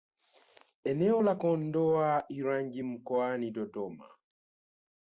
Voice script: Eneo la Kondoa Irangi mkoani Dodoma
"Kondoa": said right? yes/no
yes